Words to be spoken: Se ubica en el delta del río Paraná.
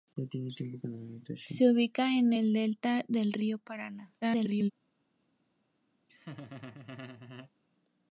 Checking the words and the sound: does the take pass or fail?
fail